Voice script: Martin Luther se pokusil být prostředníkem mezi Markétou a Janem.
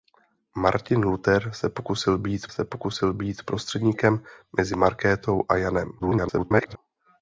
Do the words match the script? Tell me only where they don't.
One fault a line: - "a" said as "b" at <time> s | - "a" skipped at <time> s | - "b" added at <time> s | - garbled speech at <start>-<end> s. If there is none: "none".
- "se pokusil být" added at 2.5 s
- garbled speech at 6.0-6.8 s